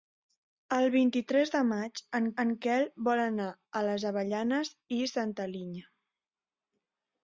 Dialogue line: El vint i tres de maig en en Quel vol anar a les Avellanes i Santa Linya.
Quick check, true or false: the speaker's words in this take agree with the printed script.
true